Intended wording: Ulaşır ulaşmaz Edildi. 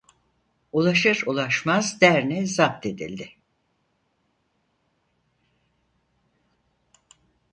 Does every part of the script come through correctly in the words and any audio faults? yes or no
no